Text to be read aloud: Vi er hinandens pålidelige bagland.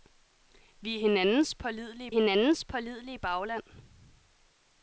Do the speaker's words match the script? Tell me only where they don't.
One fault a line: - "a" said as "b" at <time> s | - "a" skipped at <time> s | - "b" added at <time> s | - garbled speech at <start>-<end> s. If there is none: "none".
- "hinandens pålidelige" added at 2.1 s